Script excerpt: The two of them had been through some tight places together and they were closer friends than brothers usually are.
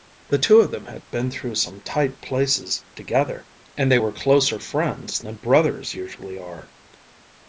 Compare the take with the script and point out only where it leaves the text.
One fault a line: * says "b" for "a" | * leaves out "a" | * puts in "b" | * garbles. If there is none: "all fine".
all fine